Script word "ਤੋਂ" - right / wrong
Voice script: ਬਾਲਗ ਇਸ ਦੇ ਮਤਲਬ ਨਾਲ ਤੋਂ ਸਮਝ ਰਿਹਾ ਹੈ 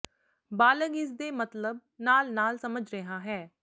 wrong